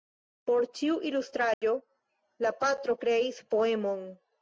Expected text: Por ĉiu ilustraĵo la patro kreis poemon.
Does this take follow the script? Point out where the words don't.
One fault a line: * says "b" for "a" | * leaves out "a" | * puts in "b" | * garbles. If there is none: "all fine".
all fine